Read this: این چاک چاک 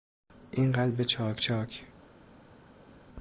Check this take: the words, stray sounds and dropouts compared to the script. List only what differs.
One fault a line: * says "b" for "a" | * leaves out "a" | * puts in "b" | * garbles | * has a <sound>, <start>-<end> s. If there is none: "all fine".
* puts in "قلب"